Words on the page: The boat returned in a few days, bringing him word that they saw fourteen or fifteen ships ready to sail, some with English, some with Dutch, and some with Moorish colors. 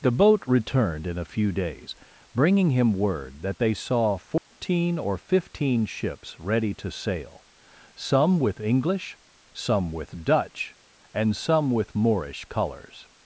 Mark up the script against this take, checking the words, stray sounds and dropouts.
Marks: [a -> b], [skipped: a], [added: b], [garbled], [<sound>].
The boat returned in a few days, bringing him word that they saw fourteen [dropout] or fifteen ships ready to sail, some with English, some with Dutch, and some with Moorish colors.